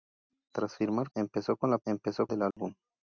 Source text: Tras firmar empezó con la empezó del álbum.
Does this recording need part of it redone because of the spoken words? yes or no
no